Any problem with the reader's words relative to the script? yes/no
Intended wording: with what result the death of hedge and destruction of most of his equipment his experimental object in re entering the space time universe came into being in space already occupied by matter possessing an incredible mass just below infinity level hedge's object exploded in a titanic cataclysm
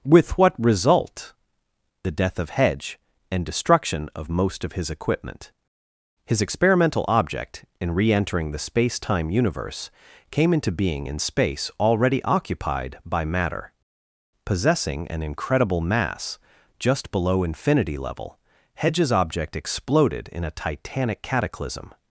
no